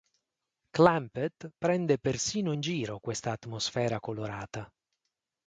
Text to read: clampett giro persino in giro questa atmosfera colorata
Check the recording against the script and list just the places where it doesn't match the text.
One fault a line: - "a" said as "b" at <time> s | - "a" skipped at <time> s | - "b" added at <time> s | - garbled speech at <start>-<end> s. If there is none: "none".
- "giro" said as "prende" at 1.6 s